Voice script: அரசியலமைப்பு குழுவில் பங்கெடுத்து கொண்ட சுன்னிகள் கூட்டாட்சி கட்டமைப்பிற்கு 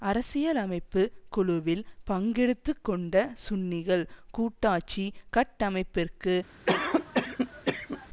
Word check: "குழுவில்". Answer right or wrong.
right